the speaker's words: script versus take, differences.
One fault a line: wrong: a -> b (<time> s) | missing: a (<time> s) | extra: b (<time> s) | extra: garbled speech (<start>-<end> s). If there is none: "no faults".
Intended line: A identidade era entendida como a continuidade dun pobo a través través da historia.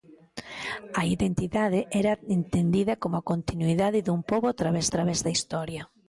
no faults